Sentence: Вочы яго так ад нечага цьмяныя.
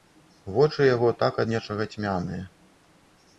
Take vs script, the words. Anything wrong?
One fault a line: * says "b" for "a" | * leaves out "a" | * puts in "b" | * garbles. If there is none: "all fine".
all fine